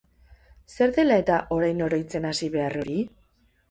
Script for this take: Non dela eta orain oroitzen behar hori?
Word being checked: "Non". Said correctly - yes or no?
no